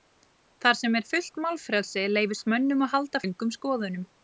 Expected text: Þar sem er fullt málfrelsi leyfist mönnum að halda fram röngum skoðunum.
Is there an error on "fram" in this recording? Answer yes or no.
yes